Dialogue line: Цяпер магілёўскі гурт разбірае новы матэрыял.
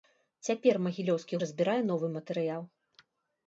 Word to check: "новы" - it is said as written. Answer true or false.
true